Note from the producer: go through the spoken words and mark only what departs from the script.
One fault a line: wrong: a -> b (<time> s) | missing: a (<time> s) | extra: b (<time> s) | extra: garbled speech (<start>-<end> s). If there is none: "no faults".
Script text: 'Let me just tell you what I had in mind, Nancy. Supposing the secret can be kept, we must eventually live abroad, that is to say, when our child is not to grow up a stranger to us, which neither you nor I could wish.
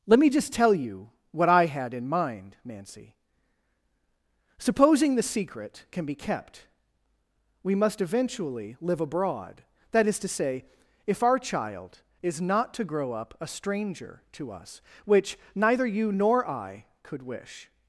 wrong: when -> if (11.1 s)